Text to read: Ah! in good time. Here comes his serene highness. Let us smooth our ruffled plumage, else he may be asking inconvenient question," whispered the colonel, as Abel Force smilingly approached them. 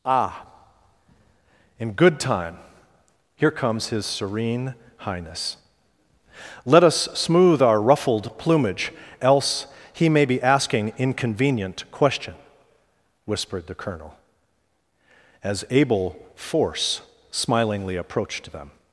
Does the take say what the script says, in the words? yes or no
yes